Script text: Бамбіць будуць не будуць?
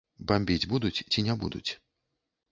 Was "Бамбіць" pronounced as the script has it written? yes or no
yes